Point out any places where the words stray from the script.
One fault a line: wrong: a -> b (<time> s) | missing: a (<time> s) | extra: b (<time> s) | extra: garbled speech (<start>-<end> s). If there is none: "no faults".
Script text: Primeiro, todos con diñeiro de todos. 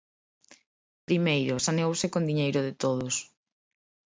wrong: todos -> saneouse (1.7 s)